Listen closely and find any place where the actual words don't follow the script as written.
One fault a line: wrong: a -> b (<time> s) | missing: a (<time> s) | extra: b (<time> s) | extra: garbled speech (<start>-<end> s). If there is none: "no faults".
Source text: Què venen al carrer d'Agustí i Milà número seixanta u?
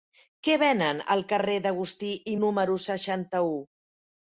missing: Milà (2.4 s)